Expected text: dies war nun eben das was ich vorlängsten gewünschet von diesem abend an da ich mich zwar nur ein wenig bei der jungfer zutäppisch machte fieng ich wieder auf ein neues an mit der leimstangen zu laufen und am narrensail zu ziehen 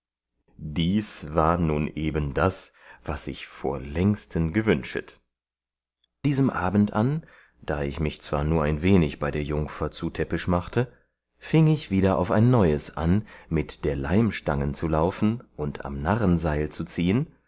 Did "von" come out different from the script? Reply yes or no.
yes